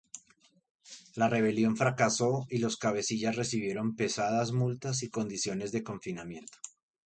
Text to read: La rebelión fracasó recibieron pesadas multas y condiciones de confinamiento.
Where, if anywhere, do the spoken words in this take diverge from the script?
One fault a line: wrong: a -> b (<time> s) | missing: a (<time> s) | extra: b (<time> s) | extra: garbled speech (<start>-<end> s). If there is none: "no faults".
extra: y los cabecillas (2.5 s)